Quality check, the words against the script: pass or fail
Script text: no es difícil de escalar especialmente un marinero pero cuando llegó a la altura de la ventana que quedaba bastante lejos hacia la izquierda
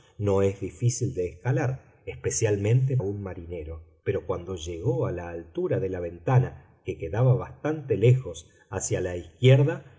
pass